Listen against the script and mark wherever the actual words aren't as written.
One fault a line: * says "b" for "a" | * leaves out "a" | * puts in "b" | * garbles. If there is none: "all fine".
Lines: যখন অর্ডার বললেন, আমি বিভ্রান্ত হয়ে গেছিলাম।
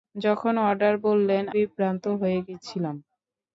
* leaves out "আমি"